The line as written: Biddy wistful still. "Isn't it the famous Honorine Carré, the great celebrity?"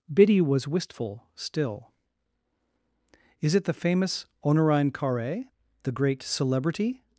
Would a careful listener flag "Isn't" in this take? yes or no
yes